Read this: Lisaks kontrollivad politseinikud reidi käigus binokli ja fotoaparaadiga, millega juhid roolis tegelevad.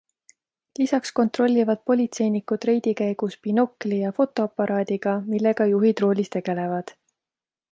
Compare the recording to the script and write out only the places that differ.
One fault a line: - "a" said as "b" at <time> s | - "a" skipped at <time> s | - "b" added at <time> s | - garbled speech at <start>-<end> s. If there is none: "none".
none